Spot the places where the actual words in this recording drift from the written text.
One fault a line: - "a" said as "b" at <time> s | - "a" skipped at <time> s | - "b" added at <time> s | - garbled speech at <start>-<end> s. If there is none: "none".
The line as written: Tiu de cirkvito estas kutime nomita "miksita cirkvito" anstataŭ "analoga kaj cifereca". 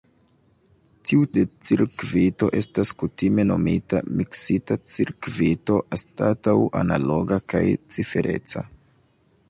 none